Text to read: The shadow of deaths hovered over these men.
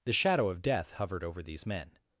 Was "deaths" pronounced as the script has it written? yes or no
no